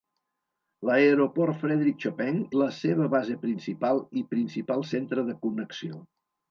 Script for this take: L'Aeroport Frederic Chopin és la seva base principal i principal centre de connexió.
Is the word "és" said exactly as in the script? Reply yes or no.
no